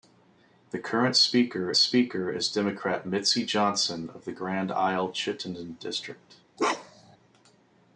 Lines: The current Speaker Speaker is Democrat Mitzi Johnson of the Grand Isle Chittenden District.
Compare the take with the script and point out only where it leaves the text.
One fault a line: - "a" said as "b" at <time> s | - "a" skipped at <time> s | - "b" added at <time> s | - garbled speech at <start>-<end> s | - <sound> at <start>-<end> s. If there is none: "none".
- bark at 6.6-7.2 s